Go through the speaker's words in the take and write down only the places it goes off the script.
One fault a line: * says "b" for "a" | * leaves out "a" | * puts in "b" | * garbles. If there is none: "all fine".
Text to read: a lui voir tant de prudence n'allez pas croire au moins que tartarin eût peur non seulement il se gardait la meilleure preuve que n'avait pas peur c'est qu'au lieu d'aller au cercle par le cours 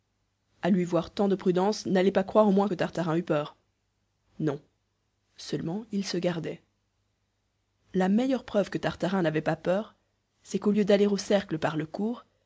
* puts in "tartarin"